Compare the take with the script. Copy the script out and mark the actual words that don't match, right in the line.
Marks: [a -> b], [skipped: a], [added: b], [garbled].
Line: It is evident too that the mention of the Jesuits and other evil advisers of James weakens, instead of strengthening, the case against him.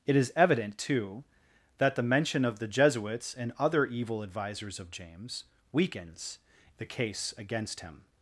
It is evident too that the mention of the Jesuits and other evil advisers of James weakens, [skipped: instead of strengthening,] the case against him.